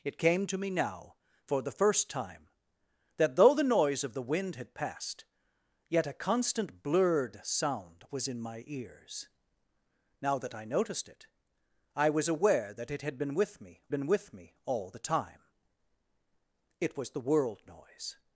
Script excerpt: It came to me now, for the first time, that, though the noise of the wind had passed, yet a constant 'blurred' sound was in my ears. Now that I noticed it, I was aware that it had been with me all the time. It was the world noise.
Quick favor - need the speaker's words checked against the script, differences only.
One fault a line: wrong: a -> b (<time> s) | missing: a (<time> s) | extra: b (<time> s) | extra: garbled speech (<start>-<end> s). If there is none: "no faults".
extra: been with me (13.9 s)